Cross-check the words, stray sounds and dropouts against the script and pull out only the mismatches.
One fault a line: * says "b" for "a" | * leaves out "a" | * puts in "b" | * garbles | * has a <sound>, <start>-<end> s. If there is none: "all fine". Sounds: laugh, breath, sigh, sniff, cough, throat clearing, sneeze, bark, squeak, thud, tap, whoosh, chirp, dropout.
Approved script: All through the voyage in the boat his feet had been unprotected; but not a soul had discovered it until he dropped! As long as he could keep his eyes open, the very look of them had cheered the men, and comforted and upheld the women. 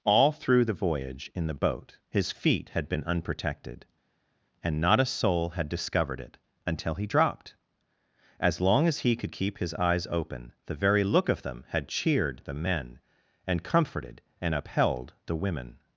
* says "and" for "but"